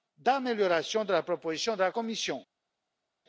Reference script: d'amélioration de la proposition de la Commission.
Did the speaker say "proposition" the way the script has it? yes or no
yes